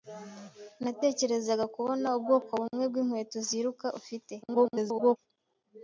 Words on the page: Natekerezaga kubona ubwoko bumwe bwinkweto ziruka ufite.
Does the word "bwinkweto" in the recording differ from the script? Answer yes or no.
no